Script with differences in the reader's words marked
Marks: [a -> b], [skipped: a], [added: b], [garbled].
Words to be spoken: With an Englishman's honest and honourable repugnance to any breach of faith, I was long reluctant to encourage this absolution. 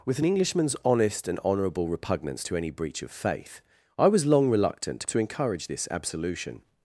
With an Englishman's honest and honourable repugnance to any breach of faith, I was long reluctant to encourage this absolution.